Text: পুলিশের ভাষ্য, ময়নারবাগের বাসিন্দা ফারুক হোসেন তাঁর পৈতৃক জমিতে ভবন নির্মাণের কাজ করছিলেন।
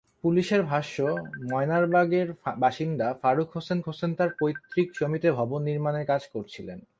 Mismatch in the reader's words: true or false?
true